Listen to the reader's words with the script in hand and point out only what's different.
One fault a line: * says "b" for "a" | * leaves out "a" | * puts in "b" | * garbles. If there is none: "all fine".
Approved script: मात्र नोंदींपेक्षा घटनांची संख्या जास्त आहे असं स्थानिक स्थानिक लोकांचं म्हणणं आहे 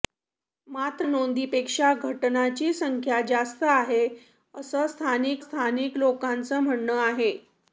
all fine